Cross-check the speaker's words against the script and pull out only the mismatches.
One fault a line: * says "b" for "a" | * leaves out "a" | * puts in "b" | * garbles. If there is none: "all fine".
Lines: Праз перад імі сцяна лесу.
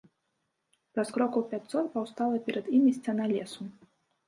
* puts in "крокаў пяцьсот паўстала"